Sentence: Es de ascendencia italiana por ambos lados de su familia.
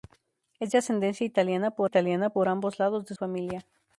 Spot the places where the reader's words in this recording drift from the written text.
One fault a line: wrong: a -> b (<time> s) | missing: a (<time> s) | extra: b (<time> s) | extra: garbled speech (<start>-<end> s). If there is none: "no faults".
extra: italiana por (1.8 s)
missing: su (3.1 s)